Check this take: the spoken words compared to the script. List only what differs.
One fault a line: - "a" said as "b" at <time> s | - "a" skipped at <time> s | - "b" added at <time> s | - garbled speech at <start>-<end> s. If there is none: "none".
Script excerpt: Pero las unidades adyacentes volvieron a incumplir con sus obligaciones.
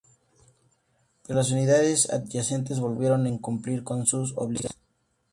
none